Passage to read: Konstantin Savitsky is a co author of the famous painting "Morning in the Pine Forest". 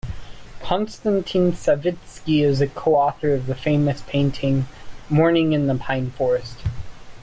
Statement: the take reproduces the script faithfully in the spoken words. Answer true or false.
true